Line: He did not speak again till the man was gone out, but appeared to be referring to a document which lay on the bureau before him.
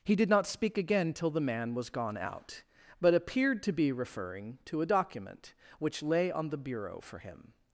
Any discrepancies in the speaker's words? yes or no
yes